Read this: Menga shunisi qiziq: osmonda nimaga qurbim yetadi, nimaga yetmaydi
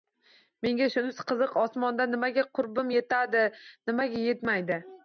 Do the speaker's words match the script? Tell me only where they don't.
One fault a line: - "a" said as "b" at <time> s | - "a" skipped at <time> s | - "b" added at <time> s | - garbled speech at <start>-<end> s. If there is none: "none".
none